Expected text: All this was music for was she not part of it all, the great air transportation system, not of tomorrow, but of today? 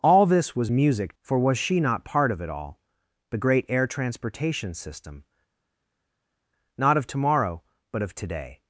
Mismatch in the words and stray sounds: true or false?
false